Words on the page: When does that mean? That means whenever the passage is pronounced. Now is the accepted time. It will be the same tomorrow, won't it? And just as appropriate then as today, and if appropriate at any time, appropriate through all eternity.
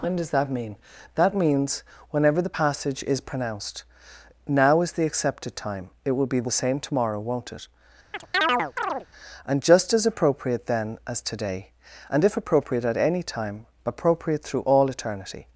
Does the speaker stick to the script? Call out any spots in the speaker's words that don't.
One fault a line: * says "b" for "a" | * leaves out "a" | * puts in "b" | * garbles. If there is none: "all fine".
all fine